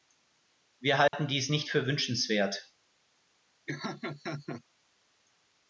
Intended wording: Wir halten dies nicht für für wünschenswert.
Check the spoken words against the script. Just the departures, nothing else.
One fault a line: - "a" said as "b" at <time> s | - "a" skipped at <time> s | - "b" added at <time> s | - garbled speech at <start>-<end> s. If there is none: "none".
- "für" skipped at 1.9 s